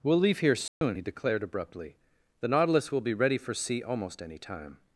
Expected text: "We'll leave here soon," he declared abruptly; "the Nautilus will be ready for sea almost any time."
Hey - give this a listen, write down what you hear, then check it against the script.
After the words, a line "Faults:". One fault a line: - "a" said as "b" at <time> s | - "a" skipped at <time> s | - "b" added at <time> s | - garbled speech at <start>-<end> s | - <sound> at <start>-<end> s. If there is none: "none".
"We'll leave here soon," he declared abruptly; "the Nautilus will be ready for sea almost any time."
Faults:
- dropout at 0.7-0.8 s